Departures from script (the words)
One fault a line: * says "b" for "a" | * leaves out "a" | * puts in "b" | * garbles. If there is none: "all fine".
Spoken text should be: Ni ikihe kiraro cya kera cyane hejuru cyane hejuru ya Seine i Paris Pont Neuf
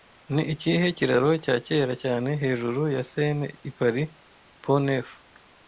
* leaves out "cyane hejuru"